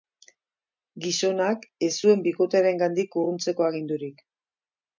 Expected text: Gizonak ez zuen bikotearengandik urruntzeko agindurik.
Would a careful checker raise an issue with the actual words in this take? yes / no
no